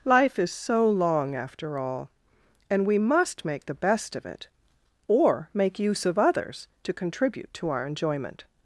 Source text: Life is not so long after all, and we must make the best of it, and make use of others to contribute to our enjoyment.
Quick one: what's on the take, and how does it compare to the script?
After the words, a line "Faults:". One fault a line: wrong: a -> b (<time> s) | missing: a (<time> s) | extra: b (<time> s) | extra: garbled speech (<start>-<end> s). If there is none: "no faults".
Life is so long after all, and we must make the best of it, or make use of others to contribute to our enjoyment.
Faults:
missing: not (0.5 s)
wrong: and -> or (5.1 s)